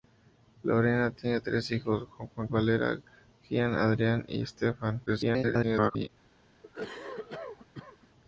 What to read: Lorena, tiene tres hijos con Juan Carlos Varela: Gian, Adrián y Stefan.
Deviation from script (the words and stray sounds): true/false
true